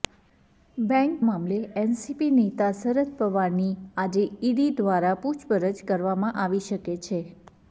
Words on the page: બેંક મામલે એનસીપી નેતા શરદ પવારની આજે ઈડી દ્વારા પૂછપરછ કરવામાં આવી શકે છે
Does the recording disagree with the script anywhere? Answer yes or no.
no